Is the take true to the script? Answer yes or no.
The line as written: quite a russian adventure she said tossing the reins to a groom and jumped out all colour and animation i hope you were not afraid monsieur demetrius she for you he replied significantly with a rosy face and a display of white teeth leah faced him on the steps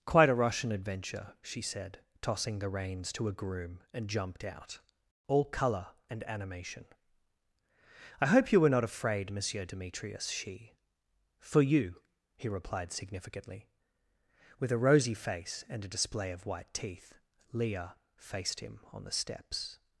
yes